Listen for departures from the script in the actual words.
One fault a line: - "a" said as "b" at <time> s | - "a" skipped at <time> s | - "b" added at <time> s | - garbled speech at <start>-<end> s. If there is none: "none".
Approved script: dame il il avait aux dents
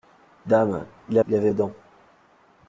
none